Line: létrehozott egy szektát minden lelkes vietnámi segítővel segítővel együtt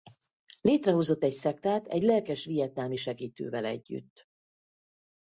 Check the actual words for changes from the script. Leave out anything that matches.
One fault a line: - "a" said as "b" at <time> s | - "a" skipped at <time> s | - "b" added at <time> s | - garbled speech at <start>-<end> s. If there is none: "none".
- "minden" said as "egy" at 1.9 s
- "segítővel" skipped at 3.7 s